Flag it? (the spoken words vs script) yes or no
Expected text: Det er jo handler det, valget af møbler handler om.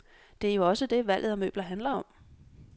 yes